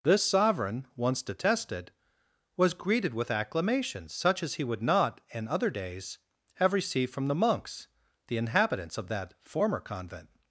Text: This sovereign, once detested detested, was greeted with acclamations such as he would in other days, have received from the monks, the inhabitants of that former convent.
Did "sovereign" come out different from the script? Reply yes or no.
no